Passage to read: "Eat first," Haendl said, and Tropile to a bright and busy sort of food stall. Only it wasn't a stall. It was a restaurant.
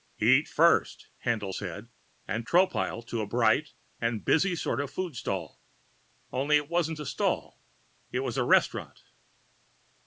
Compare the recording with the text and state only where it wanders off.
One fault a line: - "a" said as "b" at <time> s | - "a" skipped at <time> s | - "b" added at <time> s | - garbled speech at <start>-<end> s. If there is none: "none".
none